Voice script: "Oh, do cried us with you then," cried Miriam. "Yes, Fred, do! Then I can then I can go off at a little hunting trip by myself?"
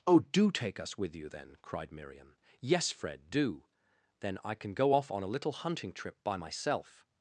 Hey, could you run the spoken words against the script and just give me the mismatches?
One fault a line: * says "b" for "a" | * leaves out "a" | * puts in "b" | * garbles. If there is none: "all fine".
* says "take" for "cried"
* leaves out "then I can"
* says "on" for "at"